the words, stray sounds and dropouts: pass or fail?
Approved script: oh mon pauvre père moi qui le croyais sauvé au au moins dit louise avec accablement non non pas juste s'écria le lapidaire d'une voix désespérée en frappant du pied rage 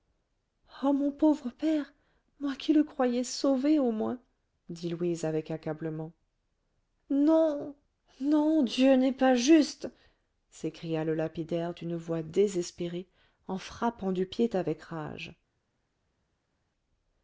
fail